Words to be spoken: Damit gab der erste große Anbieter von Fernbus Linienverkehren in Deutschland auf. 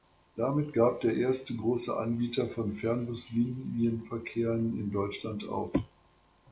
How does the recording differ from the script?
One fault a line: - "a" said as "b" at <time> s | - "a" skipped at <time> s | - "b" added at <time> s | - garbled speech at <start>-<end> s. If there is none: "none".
none